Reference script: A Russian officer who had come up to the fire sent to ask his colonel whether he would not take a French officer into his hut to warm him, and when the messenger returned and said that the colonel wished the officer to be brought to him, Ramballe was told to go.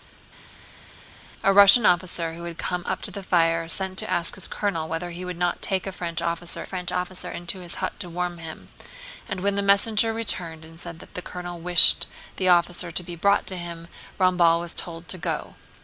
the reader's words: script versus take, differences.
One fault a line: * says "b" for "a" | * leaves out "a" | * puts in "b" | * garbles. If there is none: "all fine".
* puts in "French officer"